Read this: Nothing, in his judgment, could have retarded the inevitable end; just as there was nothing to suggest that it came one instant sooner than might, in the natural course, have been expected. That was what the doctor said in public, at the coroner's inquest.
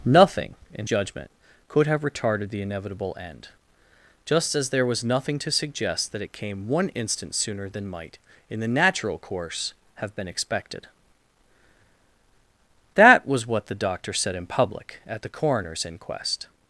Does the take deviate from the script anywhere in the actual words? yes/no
yes